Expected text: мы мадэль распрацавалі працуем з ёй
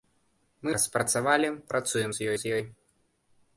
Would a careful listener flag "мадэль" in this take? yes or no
yes